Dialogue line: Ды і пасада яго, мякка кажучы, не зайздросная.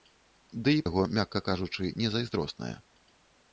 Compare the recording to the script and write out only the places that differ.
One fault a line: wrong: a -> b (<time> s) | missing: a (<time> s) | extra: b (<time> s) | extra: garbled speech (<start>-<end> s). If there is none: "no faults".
missing: пасада (0.8 s)